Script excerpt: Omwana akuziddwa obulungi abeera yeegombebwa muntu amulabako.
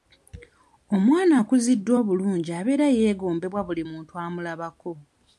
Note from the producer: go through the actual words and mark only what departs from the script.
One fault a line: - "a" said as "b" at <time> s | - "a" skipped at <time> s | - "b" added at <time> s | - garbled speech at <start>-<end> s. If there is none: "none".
- "buli" added at 3.7 s